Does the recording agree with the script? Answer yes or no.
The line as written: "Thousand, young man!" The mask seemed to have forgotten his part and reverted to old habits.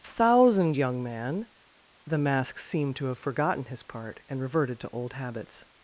yes